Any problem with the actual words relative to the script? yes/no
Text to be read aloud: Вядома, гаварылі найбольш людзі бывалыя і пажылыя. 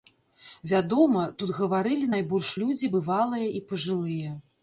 yes